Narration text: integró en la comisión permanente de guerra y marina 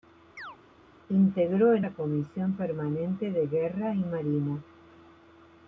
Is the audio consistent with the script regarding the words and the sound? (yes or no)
no